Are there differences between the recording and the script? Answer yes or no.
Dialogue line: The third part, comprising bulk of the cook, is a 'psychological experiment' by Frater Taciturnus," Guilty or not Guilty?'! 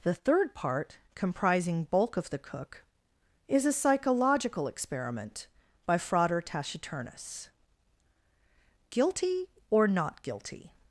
no